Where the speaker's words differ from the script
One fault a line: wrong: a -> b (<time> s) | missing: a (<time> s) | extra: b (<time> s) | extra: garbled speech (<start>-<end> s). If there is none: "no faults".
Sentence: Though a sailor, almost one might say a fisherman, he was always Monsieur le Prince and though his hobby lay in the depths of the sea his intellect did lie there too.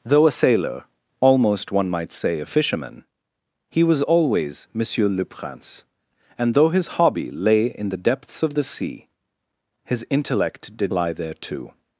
no faults